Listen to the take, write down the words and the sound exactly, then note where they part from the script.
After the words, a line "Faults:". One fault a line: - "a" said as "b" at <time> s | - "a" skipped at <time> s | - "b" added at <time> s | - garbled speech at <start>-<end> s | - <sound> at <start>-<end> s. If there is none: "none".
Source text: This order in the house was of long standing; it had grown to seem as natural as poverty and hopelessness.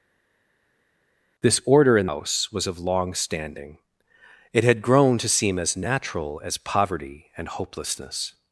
This order in house was of long standing; it had grown to seem as natural as poverty and hopelessness.
Faults:
- "the" skipped at 2.1 s